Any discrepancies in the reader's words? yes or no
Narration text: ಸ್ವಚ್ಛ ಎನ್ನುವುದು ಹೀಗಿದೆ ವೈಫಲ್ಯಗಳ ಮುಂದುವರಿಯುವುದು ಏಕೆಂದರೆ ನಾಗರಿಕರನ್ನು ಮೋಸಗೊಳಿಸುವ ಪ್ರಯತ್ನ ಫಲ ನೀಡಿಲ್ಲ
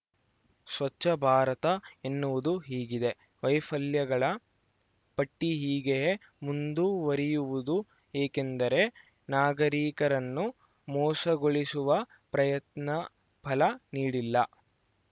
yes